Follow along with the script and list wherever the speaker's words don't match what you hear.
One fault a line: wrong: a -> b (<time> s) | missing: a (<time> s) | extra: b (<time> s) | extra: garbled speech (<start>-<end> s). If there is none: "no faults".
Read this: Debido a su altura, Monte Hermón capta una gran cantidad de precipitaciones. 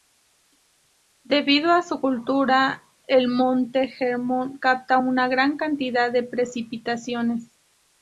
extra: el (3.1 s)